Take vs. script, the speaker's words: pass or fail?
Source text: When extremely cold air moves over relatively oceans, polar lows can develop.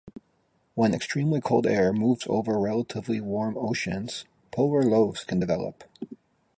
fail